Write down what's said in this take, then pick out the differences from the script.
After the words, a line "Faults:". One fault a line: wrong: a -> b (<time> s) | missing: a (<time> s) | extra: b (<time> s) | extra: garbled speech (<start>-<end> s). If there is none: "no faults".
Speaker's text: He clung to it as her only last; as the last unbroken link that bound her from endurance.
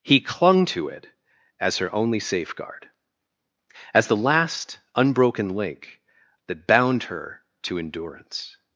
He clung to it as her only safeguard; as the last unbroken link that bound her to endurance.
Faults:
wrong: last -> safeguard (2.2 s)
wrong: from -> to (7.6 s)